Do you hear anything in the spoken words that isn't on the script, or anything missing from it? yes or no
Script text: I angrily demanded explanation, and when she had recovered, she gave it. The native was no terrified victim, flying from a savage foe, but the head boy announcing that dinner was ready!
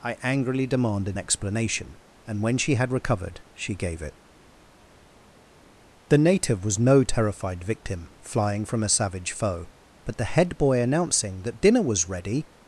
no